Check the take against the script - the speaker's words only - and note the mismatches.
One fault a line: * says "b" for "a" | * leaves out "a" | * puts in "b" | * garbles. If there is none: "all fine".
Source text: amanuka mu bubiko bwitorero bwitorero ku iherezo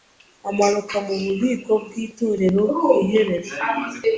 * leaves out "bwitorero"